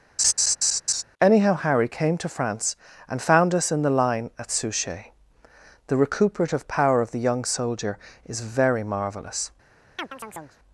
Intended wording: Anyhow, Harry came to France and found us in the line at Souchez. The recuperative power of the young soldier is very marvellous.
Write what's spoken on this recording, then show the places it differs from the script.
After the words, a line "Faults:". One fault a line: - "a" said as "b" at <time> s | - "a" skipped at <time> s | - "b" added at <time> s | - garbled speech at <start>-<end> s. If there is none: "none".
Anyhow, Harry came to France and found us in the line at Souchez. The recuperative power of the young soldier is very marvellous.
Faults:
none